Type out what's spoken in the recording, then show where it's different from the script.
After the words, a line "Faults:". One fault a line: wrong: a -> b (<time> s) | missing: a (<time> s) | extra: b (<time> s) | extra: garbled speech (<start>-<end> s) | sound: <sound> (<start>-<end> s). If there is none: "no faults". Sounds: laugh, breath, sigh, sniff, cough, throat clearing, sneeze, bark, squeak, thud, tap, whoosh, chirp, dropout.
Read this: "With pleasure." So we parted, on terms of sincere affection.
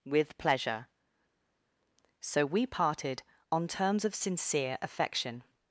"With pleasure." So we parted, on terms of sincere affection.
Faults:
no faults